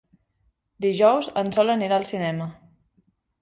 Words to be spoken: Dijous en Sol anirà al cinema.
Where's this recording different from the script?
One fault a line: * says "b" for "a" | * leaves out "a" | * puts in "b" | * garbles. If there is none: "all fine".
all fine